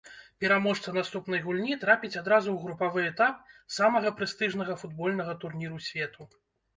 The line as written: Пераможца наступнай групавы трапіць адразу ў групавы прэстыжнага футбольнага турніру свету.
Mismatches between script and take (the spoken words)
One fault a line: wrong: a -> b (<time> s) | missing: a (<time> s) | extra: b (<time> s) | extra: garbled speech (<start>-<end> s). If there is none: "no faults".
wrong: групавы -> гульні (1.5 s)
extra: этап самага (3.1 s)